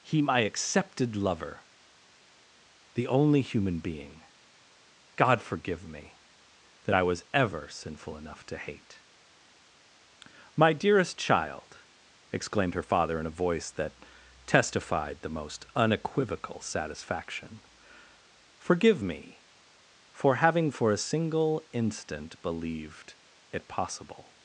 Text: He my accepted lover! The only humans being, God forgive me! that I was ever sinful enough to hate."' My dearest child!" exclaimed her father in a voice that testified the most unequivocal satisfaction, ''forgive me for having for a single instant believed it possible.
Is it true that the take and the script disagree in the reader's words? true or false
true